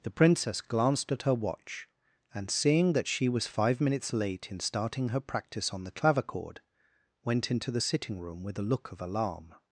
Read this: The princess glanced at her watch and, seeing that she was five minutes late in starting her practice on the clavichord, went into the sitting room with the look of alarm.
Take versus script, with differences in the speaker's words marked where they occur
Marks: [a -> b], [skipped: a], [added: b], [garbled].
The princess glanced at her watch and, seeing that she was five minutes late in starting her practice on the clavichord, went into the sitting room with [the -> a] look of alarm.